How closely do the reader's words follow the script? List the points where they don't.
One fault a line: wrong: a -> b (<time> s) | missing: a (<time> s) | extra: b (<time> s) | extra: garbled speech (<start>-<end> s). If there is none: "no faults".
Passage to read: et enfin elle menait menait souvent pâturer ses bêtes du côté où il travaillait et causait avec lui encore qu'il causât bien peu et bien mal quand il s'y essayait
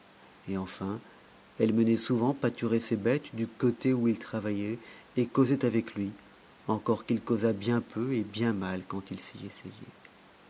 missing: menait (1.9 s)